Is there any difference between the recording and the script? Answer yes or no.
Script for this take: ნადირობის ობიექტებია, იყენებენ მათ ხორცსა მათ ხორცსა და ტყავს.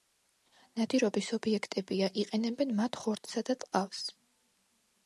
yes